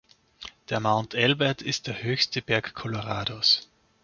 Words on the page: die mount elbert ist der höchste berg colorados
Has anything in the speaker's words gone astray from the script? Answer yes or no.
yes